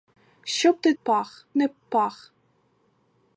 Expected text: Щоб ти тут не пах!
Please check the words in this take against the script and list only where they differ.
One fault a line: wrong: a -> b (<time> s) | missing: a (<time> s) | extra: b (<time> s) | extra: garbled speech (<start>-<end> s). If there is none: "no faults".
wrong: тут -> пах (1.0 s)